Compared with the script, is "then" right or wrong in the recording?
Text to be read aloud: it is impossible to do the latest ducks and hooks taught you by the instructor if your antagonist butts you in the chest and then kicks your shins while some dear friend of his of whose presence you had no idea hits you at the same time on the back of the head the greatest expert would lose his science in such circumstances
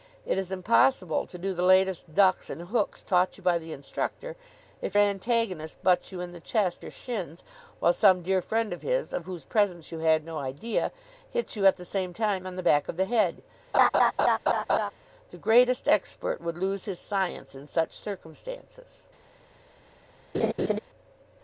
wrong